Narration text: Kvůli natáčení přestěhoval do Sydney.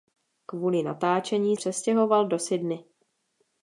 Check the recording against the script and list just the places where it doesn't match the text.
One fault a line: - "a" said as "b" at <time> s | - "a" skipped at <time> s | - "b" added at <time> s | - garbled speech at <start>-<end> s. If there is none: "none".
none